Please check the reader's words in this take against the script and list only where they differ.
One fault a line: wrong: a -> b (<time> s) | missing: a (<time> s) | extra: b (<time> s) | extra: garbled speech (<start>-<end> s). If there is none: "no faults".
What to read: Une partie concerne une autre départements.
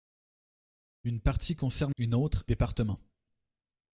no faults